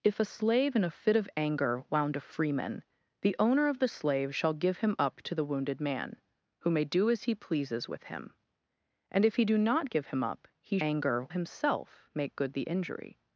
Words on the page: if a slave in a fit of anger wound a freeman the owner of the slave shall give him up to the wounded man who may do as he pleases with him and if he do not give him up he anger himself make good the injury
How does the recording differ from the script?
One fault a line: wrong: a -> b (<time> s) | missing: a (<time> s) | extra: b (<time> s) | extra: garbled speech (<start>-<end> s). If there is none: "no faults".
no faults